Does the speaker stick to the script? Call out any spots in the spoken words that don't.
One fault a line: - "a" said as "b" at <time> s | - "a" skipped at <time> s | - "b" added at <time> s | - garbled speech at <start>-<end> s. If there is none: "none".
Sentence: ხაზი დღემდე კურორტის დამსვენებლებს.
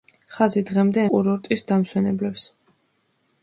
none